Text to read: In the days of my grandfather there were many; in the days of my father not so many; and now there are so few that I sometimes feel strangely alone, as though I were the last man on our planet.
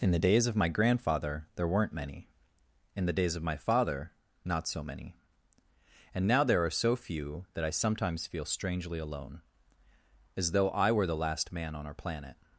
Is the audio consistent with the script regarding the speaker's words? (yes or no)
no